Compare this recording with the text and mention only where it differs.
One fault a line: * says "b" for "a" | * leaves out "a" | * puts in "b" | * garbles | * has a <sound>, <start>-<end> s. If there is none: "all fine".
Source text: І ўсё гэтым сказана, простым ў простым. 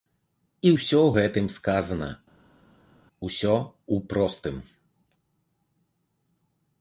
* says "усё" for "простым"